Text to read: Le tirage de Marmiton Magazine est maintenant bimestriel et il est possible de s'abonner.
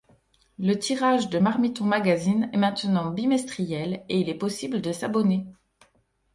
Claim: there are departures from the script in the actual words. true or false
false